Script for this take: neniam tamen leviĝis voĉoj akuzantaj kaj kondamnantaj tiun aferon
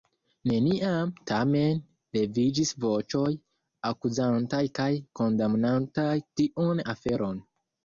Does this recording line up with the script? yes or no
yes